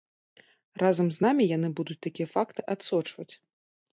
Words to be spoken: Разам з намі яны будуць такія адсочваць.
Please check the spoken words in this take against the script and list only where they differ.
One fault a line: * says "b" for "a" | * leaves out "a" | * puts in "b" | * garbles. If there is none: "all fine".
* puts in "факты"